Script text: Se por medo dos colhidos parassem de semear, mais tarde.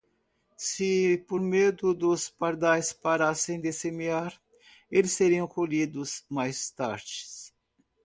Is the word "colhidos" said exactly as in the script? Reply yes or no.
no